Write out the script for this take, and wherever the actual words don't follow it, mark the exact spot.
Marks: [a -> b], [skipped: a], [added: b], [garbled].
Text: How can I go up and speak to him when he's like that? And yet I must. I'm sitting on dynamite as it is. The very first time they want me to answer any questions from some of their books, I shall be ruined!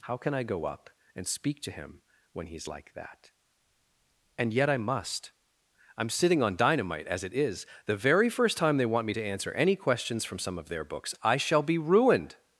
How can I go up and speak to him when he's like that? And yet I must. I'm sitting on dynamite as it is. The very first time they want me to answer any questions from some of their books, I shall be ruined!